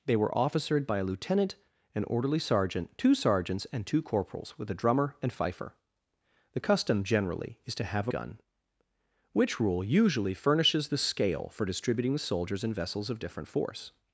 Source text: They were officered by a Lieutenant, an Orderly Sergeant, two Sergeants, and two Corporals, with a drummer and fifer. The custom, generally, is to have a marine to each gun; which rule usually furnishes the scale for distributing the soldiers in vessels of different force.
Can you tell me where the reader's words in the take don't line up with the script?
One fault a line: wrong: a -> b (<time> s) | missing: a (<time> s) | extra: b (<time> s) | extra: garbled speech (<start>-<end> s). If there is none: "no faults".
missing: marine to each (8.1 s)